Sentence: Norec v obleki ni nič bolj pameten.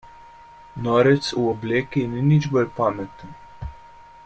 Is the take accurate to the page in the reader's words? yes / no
yes